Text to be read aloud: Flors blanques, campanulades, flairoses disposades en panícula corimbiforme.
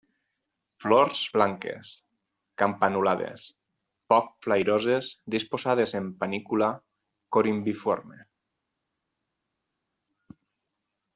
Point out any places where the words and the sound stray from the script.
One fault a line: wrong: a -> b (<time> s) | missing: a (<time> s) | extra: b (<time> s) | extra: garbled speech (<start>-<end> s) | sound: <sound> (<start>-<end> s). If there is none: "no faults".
extra: poc (4.1 s)